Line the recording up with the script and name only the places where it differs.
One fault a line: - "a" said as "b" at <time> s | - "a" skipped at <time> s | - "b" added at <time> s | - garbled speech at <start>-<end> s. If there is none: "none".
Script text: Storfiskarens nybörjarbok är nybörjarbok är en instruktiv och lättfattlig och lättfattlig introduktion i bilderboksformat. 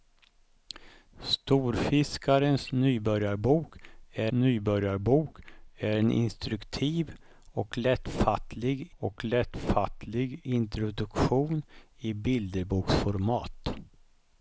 none